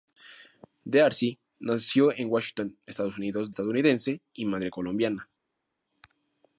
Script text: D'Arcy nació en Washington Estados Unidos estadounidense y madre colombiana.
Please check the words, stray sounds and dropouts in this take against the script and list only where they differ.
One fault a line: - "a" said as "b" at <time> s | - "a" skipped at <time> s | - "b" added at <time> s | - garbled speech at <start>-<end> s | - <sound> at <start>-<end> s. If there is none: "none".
none